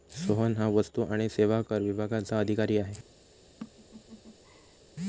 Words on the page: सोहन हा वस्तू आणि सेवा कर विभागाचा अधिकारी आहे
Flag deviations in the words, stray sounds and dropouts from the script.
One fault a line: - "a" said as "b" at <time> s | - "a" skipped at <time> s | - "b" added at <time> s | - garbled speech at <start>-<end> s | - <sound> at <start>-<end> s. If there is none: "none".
- laugh at 3.6-4.8 s